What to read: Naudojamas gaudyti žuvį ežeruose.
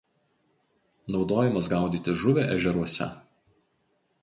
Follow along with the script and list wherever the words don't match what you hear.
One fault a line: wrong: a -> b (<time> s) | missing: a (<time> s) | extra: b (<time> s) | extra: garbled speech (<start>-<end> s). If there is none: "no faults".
no faults